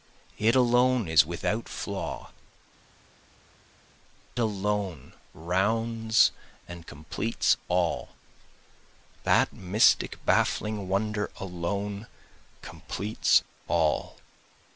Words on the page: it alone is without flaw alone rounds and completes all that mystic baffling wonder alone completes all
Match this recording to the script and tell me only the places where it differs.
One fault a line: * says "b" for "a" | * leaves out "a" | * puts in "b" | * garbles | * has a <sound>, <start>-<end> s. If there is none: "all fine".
all fine